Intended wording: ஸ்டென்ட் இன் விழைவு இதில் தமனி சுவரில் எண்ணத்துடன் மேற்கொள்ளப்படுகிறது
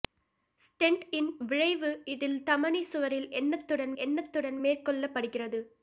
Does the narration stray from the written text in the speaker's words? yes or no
yes